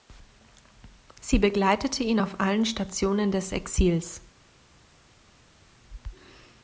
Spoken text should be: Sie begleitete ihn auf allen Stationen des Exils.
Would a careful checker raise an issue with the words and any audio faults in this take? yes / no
no